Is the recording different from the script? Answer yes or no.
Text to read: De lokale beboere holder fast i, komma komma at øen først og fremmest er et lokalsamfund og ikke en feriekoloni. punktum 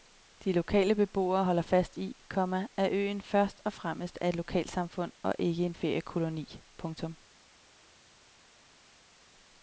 yes